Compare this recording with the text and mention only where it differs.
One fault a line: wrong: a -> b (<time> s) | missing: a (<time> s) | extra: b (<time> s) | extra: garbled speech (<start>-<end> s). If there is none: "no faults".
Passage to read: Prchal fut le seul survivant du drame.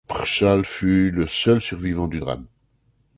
no faults